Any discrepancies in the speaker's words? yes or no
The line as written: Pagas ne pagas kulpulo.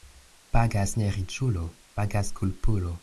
yes